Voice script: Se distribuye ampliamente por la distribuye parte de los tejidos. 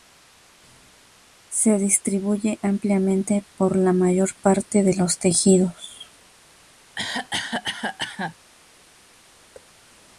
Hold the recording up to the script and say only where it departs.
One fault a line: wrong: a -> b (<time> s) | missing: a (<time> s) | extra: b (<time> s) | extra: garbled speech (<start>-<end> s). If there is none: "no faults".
wrong: distribuye -> mayor (3.9 s)